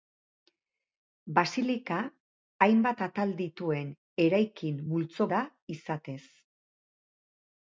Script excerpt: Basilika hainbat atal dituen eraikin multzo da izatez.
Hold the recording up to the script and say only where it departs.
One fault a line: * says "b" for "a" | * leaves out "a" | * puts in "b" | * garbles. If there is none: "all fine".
all fine